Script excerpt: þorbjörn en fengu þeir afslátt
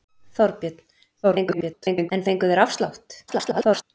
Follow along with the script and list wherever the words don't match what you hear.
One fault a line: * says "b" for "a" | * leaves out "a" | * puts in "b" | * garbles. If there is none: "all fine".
* garbles
* garbles